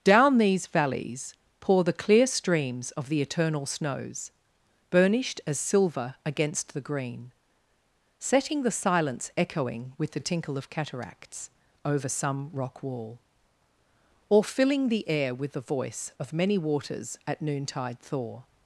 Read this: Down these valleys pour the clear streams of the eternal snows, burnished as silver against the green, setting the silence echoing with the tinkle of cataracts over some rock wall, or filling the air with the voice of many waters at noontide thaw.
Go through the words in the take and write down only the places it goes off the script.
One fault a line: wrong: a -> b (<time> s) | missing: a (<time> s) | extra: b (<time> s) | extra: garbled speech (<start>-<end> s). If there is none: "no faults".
no faults